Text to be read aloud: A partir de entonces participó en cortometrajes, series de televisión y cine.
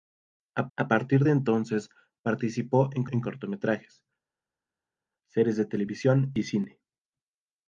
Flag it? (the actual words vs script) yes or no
yes